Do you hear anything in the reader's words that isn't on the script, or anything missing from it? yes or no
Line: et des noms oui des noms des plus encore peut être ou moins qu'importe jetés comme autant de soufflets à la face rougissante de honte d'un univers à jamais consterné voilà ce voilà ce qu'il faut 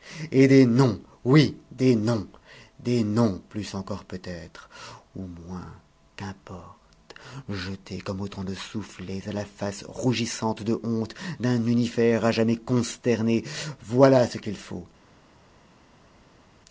yes